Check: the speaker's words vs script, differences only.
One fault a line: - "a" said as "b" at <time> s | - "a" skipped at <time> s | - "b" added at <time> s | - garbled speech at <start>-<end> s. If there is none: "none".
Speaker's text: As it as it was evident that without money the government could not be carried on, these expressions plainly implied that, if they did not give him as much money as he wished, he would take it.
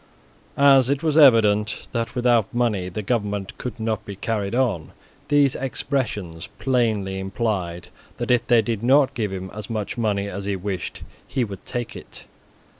- "as it" skipped at 1.0 s